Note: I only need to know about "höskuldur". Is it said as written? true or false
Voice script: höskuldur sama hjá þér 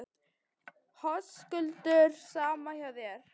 true